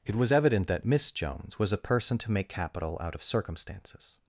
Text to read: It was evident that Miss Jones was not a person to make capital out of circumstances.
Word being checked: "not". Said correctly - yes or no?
no